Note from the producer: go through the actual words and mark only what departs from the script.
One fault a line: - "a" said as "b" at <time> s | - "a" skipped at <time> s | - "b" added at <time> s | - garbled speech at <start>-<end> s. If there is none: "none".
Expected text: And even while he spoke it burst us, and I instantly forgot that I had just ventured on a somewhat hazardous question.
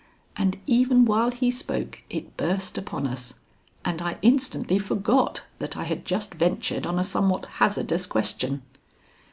- "upon" added at 2.8 s